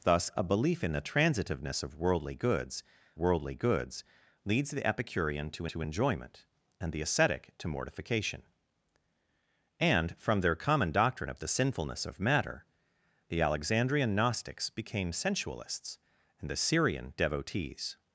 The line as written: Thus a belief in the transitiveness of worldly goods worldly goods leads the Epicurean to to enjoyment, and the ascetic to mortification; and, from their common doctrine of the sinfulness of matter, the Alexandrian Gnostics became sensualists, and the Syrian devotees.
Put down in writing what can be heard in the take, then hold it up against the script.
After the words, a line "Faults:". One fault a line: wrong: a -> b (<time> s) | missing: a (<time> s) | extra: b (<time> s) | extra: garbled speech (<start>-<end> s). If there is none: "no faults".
Thus a belief in the transitiveness of worldly goods worldly goods leads the Epicurean to to enjoyment, and the ascetic to mortification; and, from their common doctrine of the sinfulness of matter, the Alexandrian Gnostics became sensualists, and the Syrian devotees.
Faults:
no faults